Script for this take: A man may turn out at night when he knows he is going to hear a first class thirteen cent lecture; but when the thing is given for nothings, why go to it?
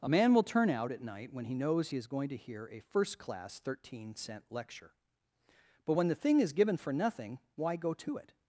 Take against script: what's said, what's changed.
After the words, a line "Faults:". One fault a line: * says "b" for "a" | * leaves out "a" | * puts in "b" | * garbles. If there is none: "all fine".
A man will turn out at night when he knows he is going to hear a first class thirteen cent lecture; but when the thing is given for nothing, why go to it?
Faults:
* says "will" for "may"
* says "nothing" for "nothings"